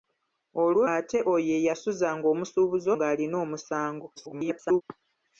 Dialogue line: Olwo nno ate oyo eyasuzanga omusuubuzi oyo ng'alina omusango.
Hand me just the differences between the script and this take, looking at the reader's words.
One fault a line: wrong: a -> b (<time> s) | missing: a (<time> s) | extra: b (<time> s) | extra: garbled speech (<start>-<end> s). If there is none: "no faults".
missing: nno (0.8 s)
missing: oyo (2.9 s)
extra: garbled speech (4.2-4.8 s)